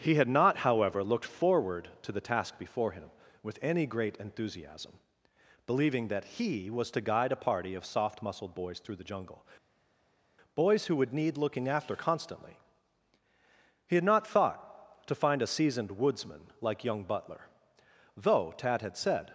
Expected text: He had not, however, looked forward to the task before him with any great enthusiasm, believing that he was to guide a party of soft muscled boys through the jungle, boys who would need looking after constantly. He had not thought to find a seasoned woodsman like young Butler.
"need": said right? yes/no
yes